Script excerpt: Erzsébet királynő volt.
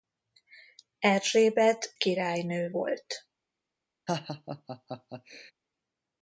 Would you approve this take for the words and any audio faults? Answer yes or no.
no